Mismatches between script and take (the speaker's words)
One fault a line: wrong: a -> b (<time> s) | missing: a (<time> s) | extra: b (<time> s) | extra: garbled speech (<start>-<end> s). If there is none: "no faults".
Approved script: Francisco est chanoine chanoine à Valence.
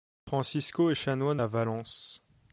missing: chanoine (1.4 s)